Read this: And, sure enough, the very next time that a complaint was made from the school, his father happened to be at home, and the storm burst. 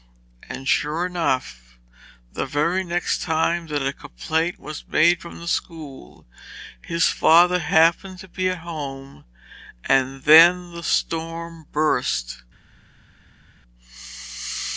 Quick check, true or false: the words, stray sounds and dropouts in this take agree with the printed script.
false